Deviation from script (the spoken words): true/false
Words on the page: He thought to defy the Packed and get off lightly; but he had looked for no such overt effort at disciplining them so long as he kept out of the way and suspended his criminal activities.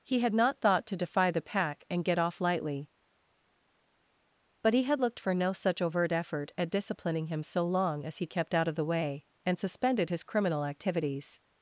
true